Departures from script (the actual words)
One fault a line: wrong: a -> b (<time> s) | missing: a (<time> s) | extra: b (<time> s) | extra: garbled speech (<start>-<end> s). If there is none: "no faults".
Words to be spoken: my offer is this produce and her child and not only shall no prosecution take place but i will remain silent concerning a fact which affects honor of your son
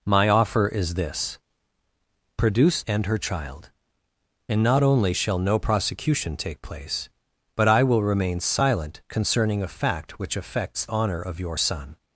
no faults